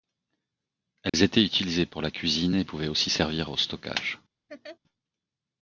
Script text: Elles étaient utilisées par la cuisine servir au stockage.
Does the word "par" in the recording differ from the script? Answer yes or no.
yes